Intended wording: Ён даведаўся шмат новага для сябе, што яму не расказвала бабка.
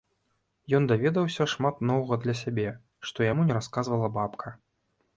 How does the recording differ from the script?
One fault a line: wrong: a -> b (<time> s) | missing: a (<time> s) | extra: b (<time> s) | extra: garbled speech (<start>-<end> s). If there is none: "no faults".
no faults